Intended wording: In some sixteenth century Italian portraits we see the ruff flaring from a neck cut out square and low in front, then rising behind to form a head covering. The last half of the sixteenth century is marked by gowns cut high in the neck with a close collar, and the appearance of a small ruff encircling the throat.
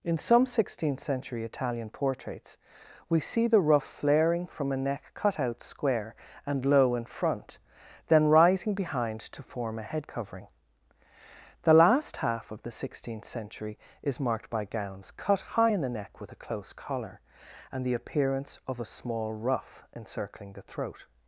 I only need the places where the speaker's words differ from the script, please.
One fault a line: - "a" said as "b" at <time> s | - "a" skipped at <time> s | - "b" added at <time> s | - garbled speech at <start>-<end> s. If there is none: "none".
none